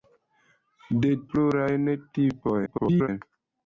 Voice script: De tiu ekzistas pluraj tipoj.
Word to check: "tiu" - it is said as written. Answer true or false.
false